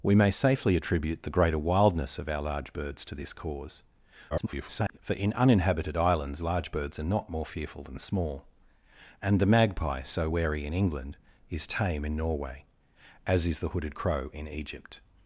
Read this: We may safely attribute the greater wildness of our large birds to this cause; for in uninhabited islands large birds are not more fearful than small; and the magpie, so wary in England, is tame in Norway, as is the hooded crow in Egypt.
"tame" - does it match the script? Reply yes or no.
yes